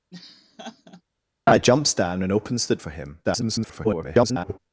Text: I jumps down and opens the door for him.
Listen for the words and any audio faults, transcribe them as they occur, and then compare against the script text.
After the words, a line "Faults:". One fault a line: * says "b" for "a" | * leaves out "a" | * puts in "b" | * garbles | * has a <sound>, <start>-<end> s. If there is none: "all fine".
I jumps down and opens the for him. [garbled]
Faults:
* has a laugh, 0.1-1.0 s
* leaves out "door"
* garbles